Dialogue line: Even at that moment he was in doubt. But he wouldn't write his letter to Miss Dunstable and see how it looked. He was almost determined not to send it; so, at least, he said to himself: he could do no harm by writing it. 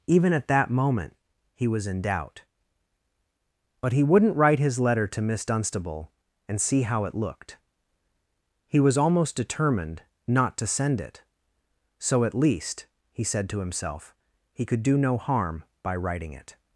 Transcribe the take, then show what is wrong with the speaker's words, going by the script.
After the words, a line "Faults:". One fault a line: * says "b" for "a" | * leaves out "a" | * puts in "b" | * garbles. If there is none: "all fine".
Even at that moment he was in doubt. But he wouldn't write his letter to Miss Dunstable and see how it looked. He was almost determined not to send it; so, at least, he said to himself: he could do no harm by writing it.
Faults:
all fine